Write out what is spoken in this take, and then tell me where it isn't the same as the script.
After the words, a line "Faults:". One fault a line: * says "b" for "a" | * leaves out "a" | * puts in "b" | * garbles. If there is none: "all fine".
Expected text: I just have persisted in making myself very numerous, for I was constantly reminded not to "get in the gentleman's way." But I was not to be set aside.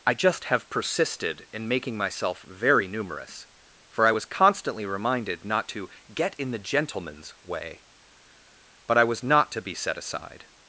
I just have persisted in making myself very numerous, for I was constantly reminded not to "get in the gentleman's way." But I was not to be set aside.
Faults:
all fine